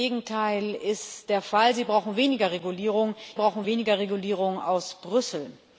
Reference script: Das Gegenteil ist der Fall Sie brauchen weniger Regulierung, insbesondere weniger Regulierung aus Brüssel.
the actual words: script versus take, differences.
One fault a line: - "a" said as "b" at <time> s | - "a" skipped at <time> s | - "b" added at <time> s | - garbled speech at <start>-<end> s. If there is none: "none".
- "insbesondere" said as "brauchen" at 3.3 s